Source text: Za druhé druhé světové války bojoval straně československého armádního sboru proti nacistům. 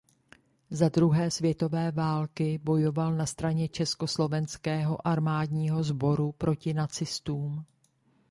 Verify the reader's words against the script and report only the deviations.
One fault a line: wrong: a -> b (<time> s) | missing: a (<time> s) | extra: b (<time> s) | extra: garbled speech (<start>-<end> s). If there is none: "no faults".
missing: druhé (1.3 s)
extra: na (3.1 s)